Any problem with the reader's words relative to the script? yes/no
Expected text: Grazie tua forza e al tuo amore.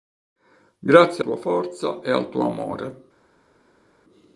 no